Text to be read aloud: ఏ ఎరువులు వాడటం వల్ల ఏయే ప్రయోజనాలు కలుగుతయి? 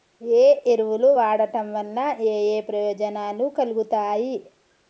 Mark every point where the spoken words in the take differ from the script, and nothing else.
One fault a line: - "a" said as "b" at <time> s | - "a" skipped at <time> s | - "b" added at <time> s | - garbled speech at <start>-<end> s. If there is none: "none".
none